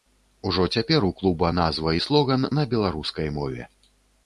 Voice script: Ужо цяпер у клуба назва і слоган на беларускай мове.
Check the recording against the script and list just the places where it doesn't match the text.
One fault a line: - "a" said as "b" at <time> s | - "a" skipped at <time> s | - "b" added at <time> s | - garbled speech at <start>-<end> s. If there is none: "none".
none